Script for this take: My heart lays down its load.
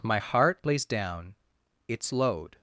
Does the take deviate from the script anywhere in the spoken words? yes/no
no